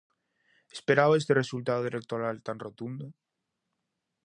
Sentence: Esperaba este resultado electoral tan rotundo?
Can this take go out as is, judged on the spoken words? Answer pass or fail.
pass